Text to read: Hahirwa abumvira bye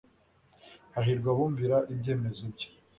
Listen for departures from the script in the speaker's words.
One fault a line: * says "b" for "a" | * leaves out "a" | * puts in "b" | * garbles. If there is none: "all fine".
* puts in "ibyemezo"